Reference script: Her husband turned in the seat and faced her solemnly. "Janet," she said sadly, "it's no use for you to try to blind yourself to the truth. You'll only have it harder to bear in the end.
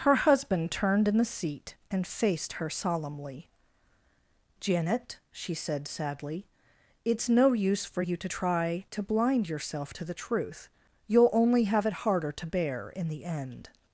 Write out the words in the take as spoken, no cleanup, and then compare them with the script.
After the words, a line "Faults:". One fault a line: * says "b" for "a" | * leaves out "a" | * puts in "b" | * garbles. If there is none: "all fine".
Her husband turned in the seat and faced her solemnly. "Janet," she said sadly, "it's no use for you to try to blind yourself to the truth. You'll only have it harder to bear in the end.
Faults:
all fine